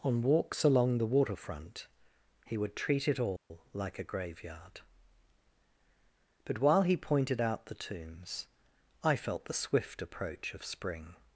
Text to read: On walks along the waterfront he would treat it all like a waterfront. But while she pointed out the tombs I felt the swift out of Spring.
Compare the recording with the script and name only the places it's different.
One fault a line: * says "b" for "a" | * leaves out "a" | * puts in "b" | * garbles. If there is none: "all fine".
* says "graveyard" for "waterfront"
* says "he" for "she"
* says "approach" for "out"